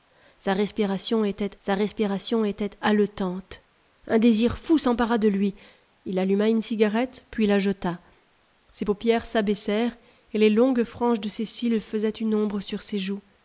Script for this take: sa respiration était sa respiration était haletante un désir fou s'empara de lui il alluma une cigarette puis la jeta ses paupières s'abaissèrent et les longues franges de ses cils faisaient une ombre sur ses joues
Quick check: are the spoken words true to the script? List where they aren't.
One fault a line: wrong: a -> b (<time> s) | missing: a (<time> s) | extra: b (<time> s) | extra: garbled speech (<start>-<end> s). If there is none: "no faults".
no faults